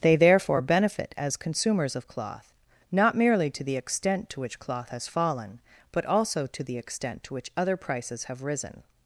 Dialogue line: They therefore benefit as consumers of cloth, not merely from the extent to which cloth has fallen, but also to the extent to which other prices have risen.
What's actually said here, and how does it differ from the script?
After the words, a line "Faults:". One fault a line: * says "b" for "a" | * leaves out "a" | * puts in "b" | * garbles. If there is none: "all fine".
They therefore benefit as consumers of cloth, not merely to the extent to which cloth has fallen, but also to the extent to which other prices have risen.
Faults:
* says "to" for "from"